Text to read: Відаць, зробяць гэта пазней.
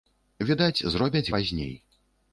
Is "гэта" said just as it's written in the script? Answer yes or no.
no